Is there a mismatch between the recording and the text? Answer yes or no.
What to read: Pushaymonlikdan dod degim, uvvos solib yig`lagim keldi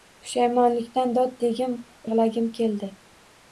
yes